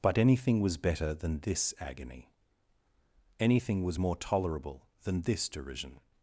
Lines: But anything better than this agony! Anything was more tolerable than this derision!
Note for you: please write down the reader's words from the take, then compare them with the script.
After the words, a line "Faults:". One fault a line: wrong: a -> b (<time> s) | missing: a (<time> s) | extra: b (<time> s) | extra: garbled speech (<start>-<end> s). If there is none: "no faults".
But anything was better than this agony! Anything was more tolerable than this derision!
Faults:
extra: was (0.6 s)